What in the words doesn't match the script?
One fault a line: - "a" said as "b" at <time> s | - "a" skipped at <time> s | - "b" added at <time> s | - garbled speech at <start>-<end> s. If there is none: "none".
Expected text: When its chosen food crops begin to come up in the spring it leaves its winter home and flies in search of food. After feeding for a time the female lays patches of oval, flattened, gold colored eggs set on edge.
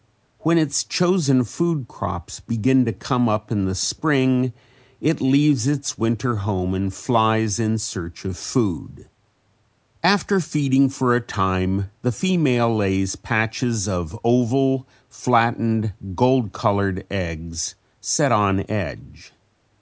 none